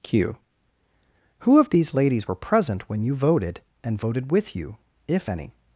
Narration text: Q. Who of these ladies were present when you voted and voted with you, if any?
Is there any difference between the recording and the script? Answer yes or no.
no